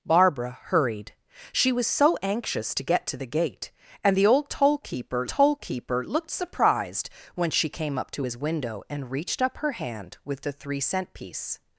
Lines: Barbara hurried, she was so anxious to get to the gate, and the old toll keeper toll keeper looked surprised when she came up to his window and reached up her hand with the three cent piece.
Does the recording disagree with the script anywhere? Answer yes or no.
no